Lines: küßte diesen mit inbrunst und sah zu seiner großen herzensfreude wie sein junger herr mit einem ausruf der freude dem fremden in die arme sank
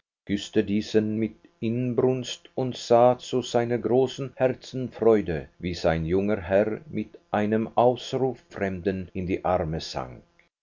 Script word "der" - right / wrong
wrong